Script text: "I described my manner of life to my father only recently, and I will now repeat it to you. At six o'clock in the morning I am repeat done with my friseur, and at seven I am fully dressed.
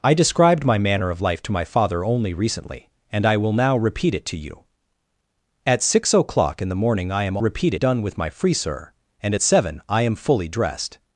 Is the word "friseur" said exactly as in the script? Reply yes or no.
yes